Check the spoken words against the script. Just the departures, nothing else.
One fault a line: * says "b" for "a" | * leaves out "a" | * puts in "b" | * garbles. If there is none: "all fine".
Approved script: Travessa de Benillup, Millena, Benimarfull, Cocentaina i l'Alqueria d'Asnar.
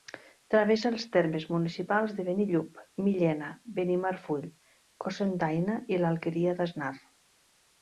* puts in "els termes municipals"